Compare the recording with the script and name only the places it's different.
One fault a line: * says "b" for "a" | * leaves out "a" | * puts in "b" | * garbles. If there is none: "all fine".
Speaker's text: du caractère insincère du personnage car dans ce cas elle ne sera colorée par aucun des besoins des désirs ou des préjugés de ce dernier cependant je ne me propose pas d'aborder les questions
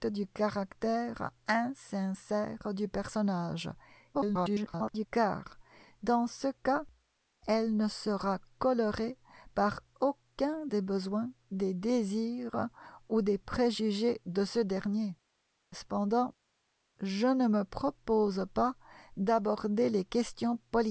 * garbles